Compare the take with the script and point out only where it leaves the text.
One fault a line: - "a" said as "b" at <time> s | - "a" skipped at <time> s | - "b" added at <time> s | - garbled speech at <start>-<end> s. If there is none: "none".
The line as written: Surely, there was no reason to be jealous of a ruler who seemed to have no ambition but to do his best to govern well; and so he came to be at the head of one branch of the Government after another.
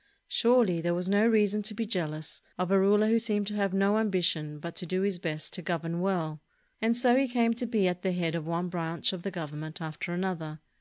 none